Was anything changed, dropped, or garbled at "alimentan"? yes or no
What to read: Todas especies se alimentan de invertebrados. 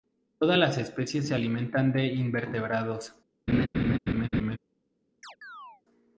no